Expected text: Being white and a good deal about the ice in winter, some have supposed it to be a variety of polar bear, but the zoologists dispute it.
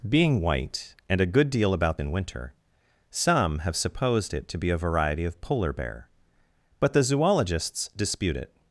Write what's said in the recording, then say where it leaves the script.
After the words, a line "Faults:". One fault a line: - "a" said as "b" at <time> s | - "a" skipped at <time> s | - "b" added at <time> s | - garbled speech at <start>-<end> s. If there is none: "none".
Being white and a good deal about in winter, some have supposed it to be a variety of polar bear, but the zoologists dispute it.
Faults:
- "the ice" skipped at 2.0 s